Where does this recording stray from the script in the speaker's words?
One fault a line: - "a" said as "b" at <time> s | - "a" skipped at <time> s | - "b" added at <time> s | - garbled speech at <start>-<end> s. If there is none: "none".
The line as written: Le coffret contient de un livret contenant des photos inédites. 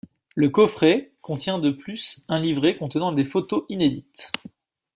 - "plus" added at 1.7 s